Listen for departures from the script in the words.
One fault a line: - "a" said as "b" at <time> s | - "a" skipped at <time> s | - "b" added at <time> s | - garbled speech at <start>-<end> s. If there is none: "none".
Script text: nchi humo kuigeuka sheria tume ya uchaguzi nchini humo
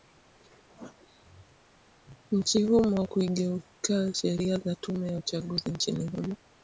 - "za" added at 4.6 s